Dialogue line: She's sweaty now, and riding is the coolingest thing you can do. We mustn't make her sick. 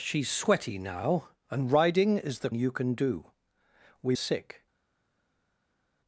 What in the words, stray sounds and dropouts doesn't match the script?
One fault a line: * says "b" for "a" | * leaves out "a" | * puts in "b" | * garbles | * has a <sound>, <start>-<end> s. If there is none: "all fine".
* leaves out "coolingest thing"
* leaves out "mustn't make her"